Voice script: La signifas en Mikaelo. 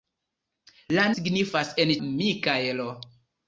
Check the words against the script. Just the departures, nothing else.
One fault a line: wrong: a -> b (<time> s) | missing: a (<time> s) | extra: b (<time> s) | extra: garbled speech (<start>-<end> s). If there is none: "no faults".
no faults